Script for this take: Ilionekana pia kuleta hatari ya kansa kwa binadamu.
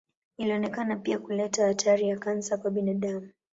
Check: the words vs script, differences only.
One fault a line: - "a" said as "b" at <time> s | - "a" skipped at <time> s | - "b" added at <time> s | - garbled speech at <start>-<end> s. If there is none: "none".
none